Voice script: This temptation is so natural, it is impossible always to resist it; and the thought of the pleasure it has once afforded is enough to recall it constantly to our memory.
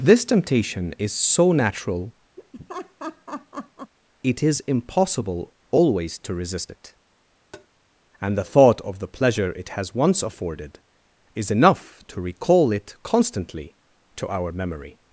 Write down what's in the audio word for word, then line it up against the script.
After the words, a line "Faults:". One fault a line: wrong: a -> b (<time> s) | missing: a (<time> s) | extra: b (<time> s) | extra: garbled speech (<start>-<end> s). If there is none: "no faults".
This temptation is so natural, it is impossible always to resist it; and the thought of the pleasure it has once afforded is enough to recall it constantly to our memory.
Faults:
no faults